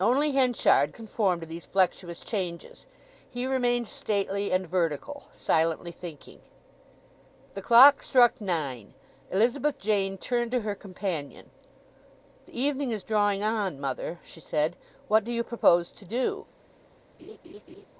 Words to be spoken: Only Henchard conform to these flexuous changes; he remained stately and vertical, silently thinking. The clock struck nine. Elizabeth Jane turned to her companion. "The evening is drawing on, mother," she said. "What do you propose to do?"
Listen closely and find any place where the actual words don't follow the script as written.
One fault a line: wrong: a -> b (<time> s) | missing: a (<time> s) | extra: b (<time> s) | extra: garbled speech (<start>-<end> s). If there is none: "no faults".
no faults